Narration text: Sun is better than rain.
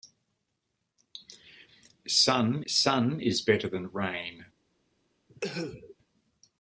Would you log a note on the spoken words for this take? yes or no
yes